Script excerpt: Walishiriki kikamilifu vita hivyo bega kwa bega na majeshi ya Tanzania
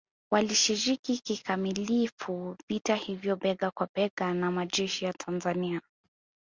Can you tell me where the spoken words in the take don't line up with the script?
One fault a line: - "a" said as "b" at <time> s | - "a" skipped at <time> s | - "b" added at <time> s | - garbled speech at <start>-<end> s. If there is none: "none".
none